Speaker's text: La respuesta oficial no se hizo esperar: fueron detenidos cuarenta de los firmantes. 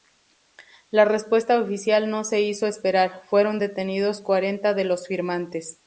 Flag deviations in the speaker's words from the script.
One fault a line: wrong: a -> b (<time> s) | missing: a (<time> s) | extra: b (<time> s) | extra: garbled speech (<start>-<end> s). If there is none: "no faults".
no faults